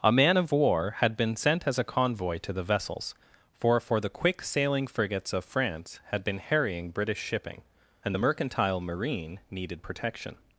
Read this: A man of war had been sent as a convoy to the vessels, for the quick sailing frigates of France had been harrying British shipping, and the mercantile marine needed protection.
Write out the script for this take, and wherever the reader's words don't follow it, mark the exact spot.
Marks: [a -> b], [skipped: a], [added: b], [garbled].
A man of war had been sent as a convoy to the vessels, for [added: for] the quick sailing frigates of France had been harrying British shipping, and the mercantile marine needed protection.